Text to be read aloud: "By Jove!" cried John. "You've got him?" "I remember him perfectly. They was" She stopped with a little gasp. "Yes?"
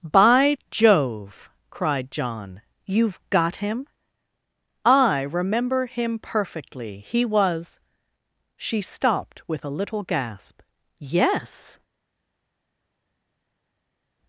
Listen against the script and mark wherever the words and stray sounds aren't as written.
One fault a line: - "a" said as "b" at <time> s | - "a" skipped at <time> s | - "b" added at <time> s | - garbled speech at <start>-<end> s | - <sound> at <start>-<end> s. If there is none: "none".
- "They" said as "He" at 7.0 s